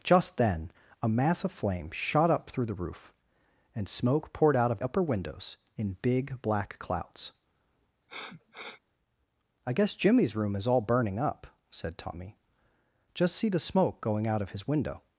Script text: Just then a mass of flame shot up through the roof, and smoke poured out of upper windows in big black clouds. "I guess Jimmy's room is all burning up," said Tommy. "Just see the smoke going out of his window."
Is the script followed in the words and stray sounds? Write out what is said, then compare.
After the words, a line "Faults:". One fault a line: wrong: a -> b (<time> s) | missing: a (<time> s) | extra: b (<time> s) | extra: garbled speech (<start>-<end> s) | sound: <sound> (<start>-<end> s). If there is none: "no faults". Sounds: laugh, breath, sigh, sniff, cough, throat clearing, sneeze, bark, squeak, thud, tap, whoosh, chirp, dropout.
Just then a mass of flame shot up through the roof, and smoke poured out of upper windows in big black clouds. "I guess Jimmy's room is all burning up," said Tommy. "Just see the smoke going out of his window."
Faults:
sound: sniff (8.1-8.8 s)